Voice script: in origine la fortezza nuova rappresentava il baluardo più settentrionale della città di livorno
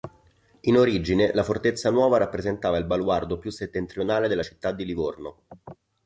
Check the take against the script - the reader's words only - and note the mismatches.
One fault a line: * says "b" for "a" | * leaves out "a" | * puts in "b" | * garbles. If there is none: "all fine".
all fine